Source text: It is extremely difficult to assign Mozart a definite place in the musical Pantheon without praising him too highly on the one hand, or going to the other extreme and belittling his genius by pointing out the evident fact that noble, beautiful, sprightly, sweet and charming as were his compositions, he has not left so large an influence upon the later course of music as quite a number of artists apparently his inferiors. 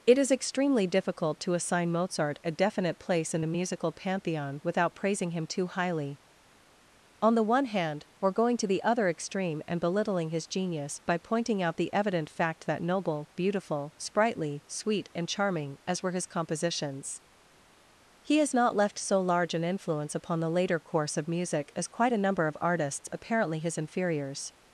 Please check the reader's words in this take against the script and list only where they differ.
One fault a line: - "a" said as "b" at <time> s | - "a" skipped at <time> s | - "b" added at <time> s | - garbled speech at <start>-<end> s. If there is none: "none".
none